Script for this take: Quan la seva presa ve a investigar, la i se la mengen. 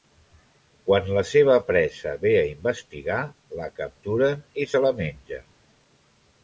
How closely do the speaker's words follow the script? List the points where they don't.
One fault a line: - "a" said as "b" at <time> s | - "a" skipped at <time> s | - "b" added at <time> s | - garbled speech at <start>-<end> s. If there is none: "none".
- "capturen" added at 3.8 s